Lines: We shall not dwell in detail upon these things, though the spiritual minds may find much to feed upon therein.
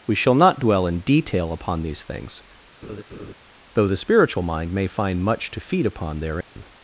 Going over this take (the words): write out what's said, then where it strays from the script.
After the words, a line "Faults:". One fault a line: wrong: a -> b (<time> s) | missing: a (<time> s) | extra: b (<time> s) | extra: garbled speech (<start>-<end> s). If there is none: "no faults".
We shall not dwell in detail upon these things, though the spiritual mind may find much to feed upon therein.
Faults:
wrong: minds -> mind (4.4 s)